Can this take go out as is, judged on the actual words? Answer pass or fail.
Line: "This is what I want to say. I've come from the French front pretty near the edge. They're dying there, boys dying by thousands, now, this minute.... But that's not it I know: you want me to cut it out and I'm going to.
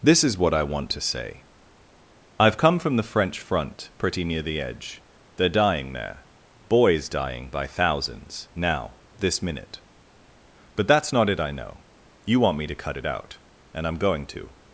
pass